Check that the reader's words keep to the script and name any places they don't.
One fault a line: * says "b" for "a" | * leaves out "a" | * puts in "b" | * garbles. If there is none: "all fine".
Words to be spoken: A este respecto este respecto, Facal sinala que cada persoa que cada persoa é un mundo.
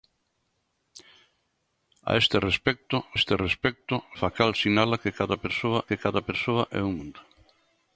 all fine